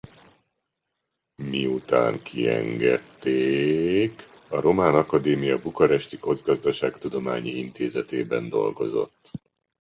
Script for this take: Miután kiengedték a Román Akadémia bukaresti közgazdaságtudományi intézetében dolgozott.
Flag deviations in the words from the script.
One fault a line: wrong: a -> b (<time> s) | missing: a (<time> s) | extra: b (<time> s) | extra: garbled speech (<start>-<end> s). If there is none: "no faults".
no faults